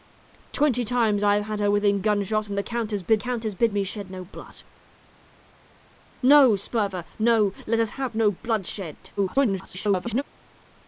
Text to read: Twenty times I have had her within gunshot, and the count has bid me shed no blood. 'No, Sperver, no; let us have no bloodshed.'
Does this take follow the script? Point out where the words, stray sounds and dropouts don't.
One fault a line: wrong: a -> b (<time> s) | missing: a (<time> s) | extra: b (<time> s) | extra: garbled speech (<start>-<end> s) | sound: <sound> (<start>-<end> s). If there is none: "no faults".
extra: count has bid (3.2 s)
extra: garbled speech (9.2-10.2 s)